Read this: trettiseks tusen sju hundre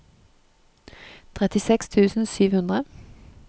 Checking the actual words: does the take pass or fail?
pass